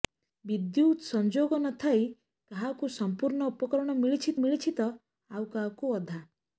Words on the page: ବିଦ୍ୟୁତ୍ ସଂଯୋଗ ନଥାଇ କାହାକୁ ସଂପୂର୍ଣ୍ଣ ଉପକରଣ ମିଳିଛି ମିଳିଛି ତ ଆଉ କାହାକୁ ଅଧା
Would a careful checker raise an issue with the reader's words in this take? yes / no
no